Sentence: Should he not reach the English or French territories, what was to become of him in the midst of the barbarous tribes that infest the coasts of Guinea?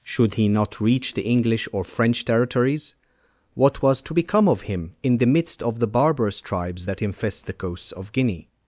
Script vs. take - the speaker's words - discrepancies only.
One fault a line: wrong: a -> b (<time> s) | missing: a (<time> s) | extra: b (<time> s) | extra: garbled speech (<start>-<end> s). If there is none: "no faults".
no faults